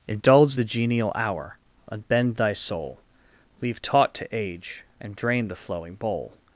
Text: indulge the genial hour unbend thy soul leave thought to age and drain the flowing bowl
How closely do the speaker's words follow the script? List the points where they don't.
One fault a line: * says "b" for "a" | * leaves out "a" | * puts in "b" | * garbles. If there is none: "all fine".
* says "taught" for "thought"